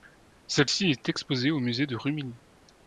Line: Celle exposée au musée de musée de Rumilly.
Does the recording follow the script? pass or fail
fail